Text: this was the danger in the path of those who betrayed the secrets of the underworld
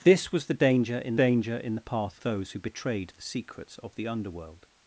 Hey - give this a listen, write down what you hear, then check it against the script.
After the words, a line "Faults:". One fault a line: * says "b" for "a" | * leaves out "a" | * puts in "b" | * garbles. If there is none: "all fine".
this was the danger in danger in the path those who betrayed the secrets of the underworld
Faults:
* puts in "danger in"
* leaves out "of"